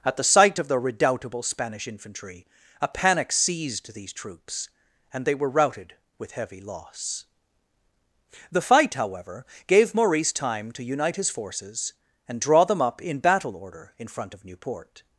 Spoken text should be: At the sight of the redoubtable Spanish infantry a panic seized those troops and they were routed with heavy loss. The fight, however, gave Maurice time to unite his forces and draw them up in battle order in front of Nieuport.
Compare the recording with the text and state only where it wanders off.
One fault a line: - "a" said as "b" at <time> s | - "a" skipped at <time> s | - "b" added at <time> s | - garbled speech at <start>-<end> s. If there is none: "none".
- "those" said as "these" at 3.9 s